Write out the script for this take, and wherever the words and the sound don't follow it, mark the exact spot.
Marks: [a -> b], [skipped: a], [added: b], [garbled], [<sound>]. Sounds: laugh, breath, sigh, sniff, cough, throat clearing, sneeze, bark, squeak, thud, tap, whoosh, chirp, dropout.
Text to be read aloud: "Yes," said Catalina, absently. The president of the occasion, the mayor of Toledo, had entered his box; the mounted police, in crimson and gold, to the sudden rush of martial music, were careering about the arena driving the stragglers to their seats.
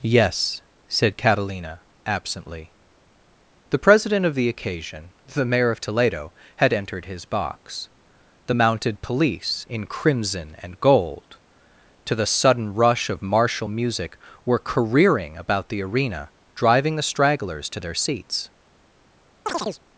"Yes," said Catalina, absently. The president of the occasion, the mayor of Toledo, had entered his box; the mounted police, in crimson and gold, to the sudden rush of martial music, were careering about the arena driving the stragglers to their seats. [chirp]